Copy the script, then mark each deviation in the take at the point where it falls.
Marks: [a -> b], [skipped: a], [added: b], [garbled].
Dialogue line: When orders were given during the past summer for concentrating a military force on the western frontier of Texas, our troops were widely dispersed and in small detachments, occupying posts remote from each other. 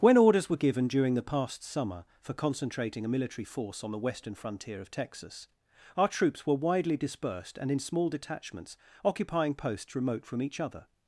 When orders were given during the past summer for concentrating a military force on the western frontier of Texas, our troops were widely dispersed and in small detachments, occupying posts remote from each other.